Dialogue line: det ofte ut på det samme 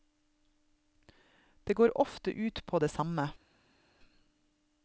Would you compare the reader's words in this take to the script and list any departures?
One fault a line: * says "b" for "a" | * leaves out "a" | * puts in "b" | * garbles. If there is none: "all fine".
* puts in "går"